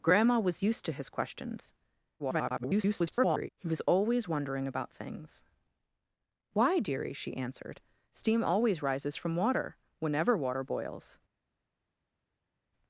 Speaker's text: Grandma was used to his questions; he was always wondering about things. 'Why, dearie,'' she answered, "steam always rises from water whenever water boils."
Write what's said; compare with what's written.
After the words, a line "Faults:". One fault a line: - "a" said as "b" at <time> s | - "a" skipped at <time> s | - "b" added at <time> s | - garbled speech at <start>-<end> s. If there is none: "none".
Grandma was used to his questions; [garbled] he was always wondering about things. 'Why, dearie,'' she answered, "steam always rises from water whenever water boils."
Faults:
- garbled speech at 2.2-3.5 s